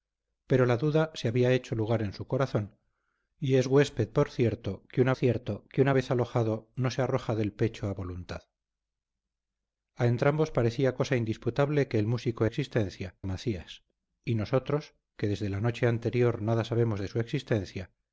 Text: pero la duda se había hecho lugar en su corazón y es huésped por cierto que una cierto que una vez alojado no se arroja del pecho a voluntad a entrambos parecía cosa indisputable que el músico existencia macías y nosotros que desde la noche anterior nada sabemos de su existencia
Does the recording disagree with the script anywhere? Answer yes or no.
no